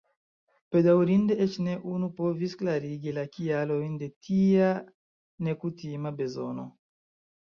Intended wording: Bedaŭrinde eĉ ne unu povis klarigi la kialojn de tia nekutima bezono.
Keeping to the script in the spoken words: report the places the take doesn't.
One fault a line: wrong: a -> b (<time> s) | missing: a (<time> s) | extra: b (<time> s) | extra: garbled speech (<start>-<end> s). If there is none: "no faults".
no faults